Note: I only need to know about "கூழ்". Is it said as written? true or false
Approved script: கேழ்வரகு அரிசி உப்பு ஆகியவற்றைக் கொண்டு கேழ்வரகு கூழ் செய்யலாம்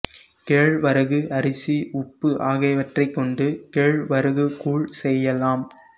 true